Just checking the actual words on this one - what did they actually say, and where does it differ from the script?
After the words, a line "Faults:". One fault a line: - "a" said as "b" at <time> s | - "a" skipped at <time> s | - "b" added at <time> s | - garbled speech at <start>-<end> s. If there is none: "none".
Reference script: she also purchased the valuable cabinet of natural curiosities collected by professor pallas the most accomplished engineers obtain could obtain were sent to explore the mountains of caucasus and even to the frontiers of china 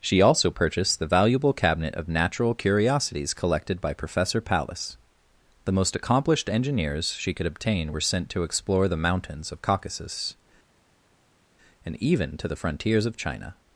she also purchased the valuable cabinet of natural curiosities collected by professor pallas the most accomplished engineers she could obtain were sent to explore the mountains of caucasus and even to the frontiers of china
Faults:
- "obtain" said as "she" at 7.1 s